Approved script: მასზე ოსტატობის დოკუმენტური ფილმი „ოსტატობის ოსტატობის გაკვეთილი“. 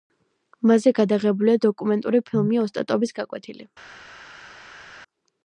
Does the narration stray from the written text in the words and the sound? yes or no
yes